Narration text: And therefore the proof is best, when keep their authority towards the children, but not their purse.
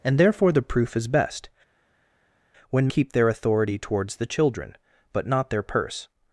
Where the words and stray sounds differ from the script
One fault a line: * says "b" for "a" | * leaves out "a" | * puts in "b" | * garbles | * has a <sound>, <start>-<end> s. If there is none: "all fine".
all fine